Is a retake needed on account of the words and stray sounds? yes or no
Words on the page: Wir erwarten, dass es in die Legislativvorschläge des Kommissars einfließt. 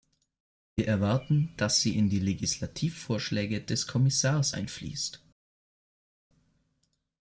yes